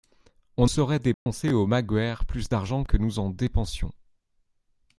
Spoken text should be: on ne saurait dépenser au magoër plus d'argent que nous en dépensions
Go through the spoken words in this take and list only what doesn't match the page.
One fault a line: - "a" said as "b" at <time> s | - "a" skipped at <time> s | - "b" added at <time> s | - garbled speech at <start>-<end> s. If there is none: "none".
- "ne" skipped at 0.7 s